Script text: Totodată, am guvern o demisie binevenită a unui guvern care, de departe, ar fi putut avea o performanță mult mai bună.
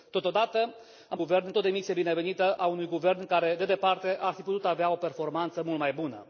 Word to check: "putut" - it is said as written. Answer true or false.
true